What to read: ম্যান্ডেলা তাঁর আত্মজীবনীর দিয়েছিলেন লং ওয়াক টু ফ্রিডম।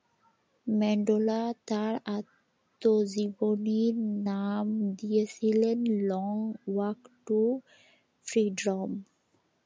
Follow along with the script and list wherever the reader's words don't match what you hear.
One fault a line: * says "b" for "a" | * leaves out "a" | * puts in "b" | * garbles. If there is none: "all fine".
* puts in "নাম"